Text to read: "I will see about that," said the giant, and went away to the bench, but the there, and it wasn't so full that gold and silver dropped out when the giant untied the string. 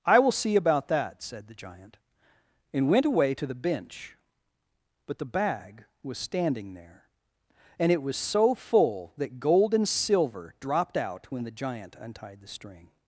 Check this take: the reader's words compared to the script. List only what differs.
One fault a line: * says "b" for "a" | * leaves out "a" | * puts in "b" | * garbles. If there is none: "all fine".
* puts in "bag was standing"
* says "was" for "wasn't"